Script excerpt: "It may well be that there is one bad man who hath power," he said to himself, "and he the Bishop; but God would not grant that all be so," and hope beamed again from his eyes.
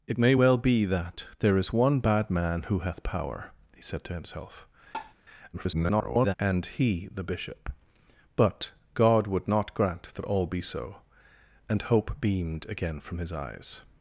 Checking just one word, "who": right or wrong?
right